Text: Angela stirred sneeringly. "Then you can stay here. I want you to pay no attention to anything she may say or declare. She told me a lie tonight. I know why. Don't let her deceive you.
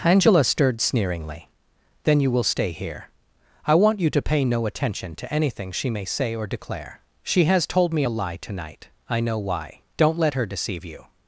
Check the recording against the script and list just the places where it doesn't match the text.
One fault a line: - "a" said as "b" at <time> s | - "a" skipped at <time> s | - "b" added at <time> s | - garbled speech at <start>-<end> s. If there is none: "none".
- "can" said as "will" at 2.3 s
- "has" added at 7.5 s